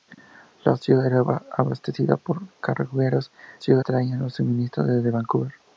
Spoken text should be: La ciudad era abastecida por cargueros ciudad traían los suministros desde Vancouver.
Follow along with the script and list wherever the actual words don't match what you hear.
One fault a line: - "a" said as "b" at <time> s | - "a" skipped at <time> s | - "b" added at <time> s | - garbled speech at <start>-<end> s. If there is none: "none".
none